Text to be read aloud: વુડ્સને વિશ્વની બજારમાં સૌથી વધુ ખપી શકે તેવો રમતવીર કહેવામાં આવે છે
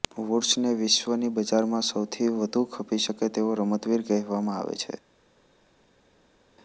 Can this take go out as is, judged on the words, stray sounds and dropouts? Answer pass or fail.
pass